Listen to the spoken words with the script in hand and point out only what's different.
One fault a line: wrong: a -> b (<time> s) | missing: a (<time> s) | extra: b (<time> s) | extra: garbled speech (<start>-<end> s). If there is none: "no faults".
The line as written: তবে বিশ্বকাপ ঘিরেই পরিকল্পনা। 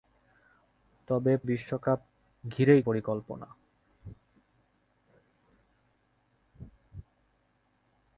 no faults